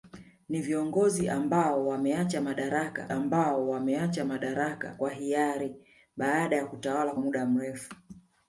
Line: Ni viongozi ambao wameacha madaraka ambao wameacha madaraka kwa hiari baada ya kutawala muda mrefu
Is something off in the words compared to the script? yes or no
no